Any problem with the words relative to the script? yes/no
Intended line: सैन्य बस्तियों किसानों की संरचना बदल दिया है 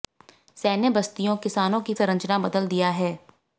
no